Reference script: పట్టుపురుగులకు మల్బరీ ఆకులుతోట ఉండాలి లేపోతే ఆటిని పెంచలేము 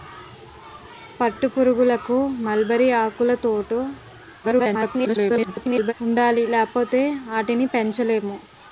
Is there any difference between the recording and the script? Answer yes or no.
yes